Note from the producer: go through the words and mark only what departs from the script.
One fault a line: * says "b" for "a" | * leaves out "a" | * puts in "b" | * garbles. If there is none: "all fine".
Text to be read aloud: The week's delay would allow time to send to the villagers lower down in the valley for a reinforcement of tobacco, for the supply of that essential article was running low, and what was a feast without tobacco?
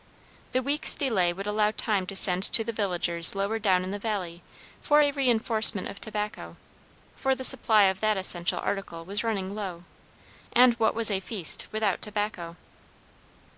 all fine